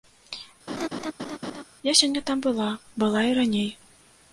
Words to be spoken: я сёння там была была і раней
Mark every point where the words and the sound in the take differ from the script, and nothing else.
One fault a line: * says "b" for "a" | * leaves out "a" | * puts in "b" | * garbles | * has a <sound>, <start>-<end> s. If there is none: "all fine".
* has a laugh, 0.7-1.6 s